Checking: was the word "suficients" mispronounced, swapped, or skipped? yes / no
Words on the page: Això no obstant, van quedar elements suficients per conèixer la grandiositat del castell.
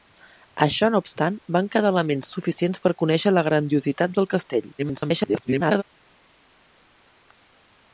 no